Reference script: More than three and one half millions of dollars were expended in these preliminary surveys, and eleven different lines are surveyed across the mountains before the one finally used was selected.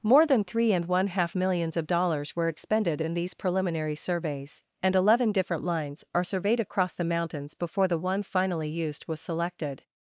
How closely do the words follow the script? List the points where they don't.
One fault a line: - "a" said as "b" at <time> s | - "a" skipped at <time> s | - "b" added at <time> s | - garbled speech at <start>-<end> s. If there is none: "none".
none